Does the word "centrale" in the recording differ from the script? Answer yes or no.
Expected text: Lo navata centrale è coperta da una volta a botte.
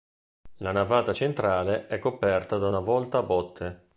no